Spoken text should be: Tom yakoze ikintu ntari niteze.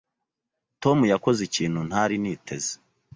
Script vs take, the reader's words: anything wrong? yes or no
no